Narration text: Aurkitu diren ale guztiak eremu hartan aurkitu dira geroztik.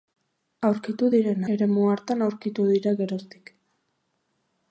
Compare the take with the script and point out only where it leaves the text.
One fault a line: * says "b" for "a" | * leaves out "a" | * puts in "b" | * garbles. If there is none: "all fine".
* leaves out "ale guztiak"